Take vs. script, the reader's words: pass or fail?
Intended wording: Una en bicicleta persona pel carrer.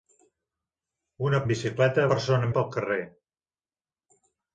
pass